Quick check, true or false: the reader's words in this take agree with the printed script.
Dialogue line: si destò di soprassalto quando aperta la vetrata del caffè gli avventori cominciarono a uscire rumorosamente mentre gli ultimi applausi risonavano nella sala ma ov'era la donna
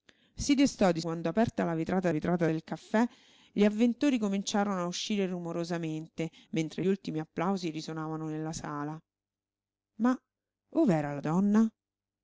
false